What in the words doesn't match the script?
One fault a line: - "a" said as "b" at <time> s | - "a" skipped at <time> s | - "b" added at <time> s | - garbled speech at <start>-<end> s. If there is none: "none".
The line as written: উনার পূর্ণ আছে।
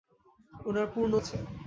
none